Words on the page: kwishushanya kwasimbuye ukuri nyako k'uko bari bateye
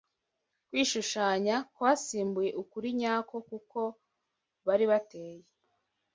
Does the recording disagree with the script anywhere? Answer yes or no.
no